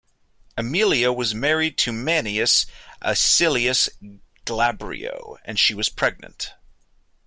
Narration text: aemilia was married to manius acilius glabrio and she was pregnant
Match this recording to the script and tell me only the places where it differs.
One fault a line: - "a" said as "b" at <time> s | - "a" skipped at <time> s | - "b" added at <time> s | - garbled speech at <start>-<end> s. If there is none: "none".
none